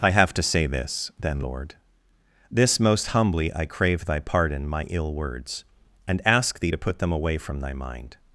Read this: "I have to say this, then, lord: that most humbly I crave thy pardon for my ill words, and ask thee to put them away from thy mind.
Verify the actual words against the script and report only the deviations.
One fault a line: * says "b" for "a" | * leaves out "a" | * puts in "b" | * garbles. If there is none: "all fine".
* says "this" for "that"
* leaves out "for"